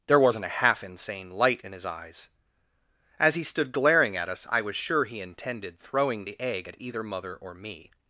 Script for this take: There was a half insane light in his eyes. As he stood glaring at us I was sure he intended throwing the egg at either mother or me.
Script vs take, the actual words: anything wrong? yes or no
yes